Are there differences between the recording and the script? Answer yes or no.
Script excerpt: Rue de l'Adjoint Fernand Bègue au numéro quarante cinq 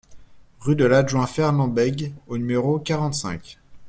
no